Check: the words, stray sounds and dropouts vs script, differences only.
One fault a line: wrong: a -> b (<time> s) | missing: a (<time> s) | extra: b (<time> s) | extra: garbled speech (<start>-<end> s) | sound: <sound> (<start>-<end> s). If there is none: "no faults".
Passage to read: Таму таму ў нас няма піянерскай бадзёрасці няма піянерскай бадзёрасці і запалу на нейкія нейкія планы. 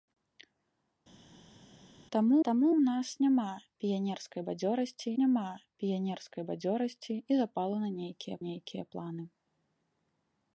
no faults